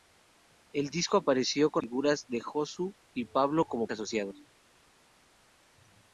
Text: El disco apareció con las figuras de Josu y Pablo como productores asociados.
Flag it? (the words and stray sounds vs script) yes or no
yes